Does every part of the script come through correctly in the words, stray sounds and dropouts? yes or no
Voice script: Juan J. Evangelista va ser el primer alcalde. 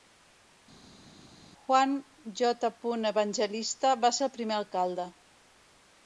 yes